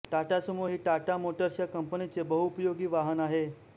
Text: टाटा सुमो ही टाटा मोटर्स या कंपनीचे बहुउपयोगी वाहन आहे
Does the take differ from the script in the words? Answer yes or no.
no